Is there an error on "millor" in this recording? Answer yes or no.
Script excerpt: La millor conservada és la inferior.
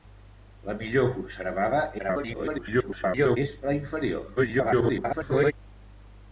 no